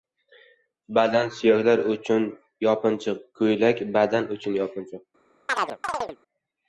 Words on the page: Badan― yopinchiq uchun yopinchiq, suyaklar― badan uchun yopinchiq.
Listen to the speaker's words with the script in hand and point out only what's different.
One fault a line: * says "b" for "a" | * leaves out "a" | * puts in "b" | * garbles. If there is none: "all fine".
* says "suyaklar" for "yopinchiq"
* says "ko‘ylak" for "suyaklar"